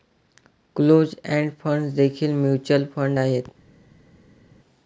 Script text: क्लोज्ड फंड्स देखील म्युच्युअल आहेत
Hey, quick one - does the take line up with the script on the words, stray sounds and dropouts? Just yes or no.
no